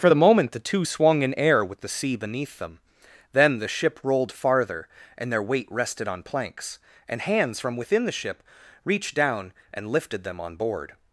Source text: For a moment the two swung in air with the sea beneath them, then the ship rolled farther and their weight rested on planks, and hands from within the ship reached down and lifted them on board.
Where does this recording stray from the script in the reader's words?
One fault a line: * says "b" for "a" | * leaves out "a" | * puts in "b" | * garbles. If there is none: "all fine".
* says "the" for "a"